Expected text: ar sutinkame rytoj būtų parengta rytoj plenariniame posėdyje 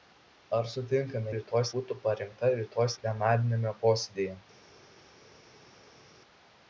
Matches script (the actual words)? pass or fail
pass